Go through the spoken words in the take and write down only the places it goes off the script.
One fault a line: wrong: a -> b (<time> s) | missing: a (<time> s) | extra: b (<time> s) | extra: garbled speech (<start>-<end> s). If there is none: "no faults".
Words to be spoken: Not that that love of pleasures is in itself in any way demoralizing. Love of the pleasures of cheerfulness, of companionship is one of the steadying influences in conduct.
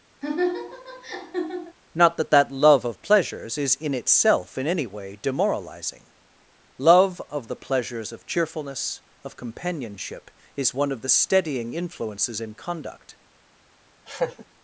no faults